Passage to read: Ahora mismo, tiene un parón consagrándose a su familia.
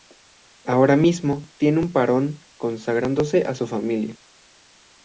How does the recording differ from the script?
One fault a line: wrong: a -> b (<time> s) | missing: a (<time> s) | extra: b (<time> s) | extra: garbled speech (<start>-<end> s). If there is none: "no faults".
no faults